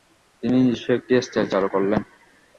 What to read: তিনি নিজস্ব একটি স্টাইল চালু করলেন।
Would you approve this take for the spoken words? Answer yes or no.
yes